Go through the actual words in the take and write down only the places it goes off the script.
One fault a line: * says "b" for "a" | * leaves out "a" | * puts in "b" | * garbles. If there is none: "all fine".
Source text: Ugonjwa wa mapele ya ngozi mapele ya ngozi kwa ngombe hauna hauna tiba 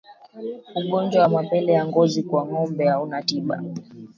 * leaves out "mapele ya ngozi"
* leaves out "hauna"